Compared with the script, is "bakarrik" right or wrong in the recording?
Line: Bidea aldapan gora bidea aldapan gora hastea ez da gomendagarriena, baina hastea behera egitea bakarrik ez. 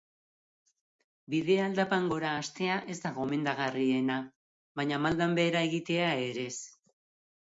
wrong